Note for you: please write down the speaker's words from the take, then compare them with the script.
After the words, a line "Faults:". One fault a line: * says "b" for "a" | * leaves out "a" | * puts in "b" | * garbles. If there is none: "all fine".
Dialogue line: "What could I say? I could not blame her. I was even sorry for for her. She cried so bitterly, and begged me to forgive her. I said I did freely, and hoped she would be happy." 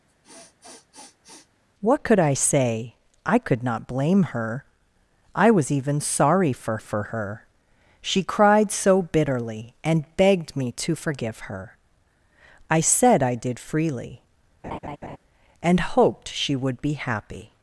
"What could I say? I could not blame her. I was even sorry for for her. She cried so bitterly, and begged me to forgive her. I said I did freely, and hoped she would be happy."
Faults:
all fine